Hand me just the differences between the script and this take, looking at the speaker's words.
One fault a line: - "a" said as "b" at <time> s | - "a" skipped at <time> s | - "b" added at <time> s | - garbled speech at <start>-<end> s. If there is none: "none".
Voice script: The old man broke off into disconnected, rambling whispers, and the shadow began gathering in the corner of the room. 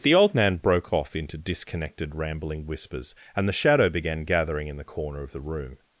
none